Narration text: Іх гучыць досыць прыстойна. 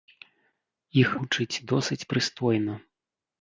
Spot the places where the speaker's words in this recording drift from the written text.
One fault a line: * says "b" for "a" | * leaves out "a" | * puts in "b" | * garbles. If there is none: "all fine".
all fine